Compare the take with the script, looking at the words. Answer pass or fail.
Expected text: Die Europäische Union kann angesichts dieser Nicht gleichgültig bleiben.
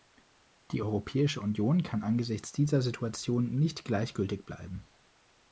fail